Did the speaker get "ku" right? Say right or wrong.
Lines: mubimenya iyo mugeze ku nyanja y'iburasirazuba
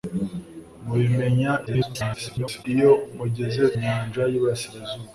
wrong